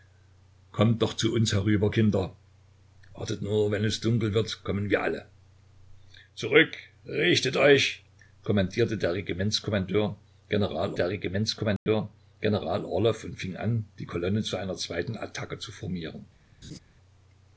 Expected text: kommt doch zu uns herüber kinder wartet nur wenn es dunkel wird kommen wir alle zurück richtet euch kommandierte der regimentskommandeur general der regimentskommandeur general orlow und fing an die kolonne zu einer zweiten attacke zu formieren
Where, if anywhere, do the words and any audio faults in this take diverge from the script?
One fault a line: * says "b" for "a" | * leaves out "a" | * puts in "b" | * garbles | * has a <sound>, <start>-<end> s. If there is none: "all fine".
* has a dropout, 11.8-11.9 s
* has a laugh, 16.6-16.8 s